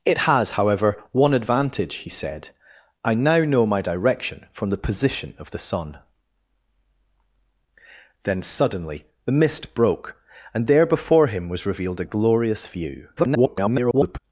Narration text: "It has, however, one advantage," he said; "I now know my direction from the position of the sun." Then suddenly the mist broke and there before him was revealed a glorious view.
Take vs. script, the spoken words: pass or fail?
fail